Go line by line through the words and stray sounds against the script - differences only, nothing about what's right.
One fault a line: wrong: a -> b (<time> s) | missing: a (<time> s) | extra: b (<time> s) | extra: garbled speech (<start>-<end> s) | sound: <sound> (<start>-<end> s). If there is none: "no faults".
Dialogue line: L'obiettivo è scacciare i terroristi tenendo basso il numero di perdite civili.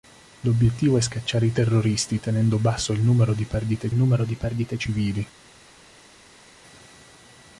extra: numero di perdite (3.9 s)